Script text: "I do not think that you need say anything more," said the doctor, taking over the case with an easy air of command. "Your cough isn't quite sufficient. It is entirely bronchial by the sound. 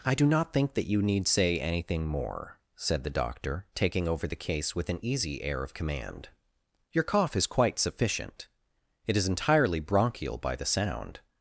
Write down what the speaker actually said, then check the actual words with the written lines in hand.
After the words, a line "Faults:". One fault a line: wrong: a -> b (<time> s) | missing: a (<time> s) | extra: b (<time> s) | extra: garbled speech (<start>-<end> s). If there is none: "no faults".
"I do not think that you need say anything more," said the doctor, taking over the case with an easy air of command. "Your cough is quite sufficient. It is entirely bronchial by the sound.
Faults:
wrong: isn't -> is (7.3 s)